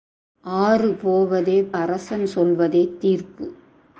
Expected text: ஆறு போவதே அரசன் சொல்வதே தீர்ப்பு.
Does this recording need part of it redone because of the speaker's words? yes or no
no